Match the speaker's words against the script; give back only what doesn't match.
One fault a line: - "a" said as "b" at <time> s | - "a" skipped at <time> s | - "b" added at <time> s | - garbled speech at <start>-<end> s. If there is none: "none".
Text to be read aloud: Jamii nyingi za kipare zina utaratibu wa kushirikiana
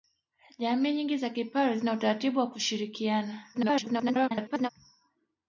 - garbled speech at 3.5-4.7 s